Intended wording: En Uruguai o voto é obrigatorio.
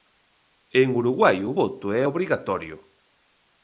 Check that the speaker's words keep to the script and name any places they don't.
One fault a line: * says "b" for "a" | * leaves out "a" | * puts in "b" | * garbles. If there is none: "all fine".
all fine